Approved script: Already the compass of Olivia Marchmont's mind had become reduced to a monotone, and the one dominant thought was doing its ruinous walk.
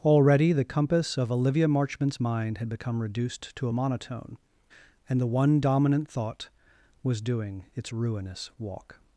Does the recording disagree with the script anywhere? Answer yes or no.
no